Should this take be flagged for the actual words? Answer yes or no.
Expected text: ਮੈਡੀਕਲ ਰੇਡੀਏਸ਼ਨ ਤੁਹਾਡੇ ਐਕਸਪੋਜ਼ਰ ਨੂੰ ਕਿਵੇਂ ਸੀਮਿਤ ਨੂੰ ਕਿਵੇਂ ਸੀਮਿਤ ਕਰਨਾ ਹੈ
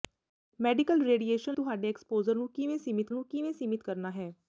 no